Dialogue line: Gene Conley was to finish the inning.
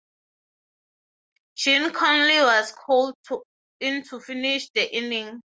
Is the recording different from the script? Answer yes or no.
yes